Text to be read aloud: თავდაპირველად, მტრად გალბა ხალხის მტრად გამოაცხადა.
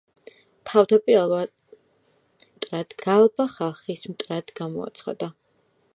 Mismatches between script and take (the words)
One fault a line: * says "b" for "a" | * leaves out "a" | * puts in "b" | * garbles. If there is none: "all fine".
all fine